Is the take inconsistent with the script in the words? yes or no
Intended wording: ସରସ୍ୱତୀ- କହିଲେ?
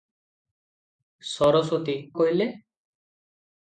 no